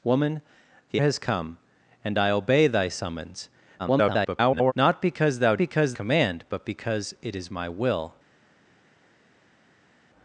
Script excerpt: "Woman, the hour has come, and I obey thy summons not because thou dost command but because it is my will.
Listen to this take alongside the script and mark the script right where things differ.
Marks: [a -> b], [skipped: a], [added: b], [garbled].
"Woman, the [skipped: hour] has come, and I obey thy summons [garbled] not because thou [dost -> because] command but because it is my will.